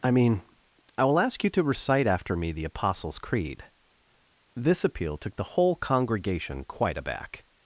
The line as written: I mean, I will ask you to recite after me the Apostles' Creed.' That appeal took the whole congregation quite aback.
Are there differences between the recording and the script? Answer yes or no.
yes